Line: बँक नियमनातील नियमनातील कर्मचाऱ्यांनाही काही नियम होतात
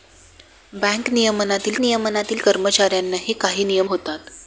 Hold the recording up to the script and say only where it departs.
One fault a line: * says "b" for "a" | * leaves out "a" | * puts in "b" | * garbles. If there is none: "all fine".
all fine